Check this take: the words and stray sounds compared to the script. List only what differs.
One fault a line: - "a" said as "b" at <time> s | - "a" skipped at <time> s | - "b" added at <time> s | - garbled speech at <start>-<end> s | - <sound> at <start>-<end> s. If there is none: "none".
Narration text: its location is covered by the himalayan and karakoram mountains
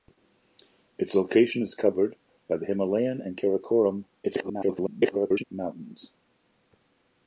- garbled speech at 4.2-5.4 s